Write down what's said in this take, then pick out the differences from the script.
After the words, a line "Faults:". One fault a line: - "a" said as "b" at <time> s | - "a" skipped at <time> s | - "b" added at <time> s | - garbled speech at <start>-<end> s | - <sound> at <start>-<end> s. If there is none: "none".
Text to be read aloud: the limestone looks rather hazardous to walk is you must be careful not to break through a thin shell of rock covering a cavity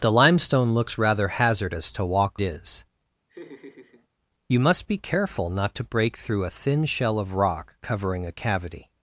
the limestone looks rather hazardous to walk is you must be careful not to break through a thin shell of rock covering a cavity
Faults:
- laugh at 3.3-4.1 s